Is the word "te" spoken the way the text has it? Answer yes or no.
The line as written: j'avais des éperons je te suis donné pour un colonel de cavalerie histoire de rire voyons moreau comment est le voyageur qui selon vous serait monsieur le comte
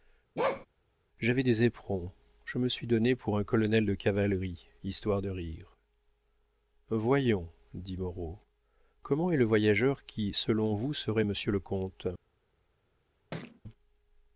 no